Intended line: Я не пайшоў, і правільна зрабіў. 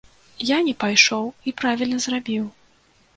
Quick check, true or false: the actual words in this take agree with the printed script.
true